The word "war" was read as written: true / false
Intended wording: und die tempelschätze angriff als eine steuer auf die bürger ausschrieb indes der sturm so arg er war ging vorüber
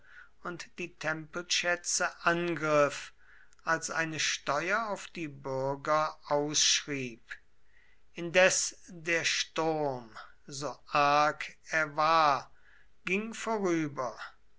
true